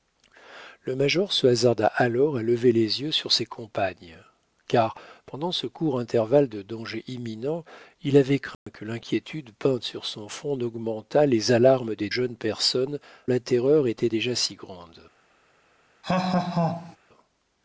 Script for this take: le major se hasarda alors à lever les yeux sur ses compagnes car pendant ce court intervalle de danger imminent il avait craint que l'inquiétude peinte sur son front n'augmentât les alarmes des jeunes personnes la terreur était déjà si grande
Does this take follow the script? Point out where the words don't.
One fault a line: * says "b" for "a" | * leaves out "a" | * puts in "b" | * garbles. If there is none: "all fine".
all fine